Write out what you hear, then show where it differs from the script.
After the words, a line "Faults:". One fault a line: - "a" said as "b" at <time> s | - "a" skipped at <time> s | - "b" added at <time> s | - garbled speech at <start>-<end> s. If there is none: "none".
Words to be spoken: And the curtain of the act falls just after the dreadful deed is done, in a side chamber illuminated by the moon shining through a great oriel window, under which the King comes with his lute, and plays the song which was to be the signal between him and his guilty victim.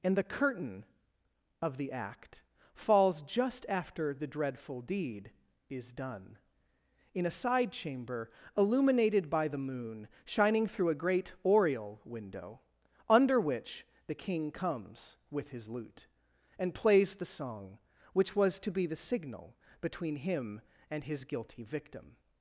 And the curtain of the act falls just after the dreadful deed is done, in a side chamber illuminated by the moon shining through a great oriel window, under which the King comes with his lute, and plays the song which was to be the signal between him and his guilty victim.
Faults:
none